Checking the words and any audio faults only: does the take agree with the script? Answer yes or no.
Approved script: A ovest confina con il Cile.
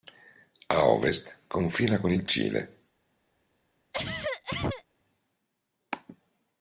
no